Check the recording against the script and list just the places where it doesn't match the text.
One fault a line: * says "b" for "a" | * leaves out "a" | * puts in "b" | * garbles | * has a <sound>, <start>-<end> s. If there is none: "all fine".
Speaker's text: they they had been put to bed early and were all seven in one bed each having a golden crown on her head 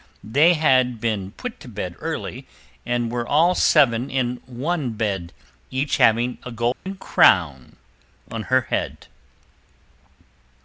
* leaves out "they"
* has a dropout, 6.7-6.9 s